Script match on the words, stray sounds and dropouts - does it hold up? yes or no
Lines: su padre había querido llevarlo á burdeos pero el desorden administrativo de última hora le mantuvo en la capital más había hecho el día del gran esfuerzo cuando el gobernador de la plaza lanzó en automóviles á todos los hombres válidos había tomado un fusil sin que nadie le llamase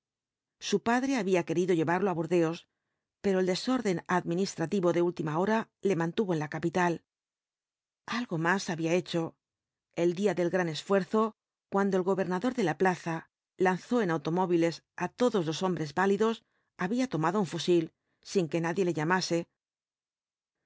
no